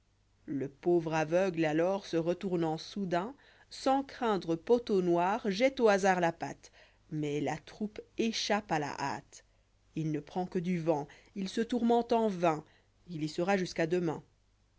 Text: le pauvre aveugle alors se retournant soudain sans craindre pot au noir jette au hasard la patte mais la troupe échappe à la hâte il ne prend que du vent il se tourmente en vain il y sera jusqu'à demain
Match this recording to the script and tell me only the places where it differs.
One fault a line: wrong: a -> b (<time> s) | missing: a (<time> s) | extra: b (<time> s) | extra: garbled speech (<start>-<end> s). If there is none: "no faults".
no faults